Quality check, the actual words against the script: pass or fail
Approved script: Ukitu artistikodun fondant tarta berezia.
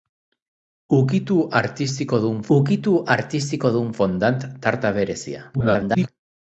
fail